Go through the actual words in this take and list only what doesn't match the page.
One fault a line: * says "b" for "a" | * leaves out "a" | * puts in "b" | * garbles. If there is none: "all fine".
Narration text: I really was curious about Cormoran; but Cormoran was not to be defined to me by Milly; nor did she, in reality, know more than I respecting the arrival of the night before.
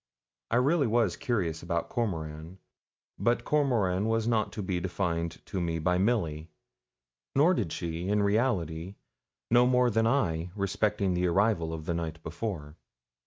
all fine